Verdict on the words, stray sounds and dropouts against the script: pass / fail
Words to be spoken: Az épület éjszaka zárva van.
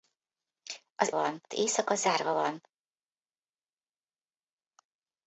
fail